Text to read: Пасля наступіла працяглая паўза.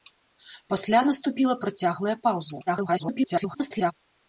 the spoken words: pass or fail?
fail